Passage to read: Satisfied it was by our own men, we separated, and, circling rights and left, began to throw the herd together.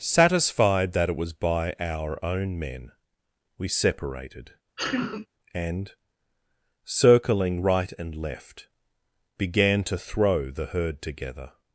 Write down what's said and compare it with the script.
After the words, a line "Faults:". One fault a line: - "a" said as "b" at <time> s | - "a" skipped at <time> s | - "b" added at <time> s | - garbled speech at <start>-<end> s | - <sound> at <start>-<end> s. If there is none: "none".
Satisfied that it was by our own men, we separated, and, circling right and left, began to throw the herd together.
Faults:
- "that" added at 0.9 s
- sneeze at 4.8-5.3 s
- "rights" said as "right" at 7.6 s